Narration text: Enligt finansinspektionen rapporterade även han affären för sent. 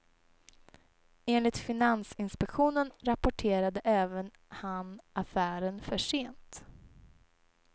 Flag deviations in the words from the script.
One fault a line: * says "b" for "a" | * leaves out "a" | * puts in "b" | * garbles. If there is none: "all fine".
all fine